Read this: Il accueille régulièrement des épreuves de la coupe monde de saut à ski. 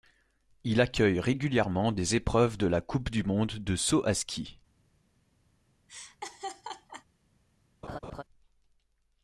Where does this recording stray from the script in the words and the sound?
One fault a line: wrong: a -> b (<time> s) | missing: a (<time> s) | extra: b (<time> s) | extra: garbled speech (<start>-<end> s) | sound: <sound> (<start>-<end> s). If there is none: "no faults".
extra: du (3.1 s)
sound: laugh (5.9-7.1 s)
sound: laugh (7.8-8.2 s)